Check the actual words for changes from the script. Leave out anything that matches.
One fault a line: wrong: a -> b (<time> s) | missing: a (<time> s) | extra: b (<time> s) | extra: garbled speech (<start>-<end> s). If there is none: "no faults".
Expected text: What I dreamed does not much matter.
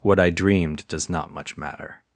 no faults